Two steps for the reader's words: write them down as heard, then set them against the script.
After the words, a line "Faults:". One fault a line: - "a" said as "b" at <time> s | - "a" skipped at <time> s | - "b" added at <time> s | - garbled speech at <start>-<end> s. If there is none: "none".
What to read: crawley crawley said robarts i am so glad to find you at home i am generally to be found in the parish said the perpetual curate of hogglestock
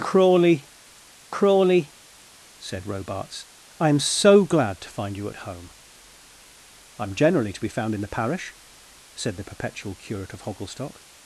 crawley crawley said robarts i am so glad to find you at home i am generally to be found in the parish said the perpetual curate of hogglestock
Faults:
none